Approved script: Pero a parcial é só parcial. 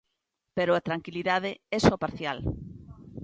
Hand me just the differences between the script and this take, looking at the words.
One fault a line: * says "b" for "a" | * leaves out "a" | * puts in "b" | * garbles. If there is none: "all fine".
* says "tranquilidade" for "parcial"